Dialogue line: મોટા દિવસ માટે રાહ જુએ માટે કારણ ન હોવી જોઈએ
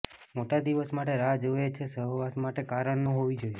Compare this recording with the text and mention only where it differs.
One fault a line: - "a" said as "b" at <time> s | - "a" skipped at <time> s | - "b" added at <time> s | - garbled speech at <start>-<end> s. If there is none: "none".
- "છે સહવાસ" added at 1.7 s